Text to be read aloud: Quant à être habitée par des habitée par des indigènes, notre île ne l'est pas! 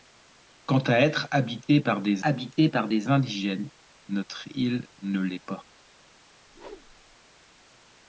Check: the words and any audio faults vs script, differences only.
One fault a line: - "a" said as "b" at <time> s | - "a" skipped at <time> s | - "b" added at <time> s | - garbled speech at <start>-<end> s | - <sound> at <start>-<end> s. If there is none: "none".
- whoosh at 6.5-7.2 s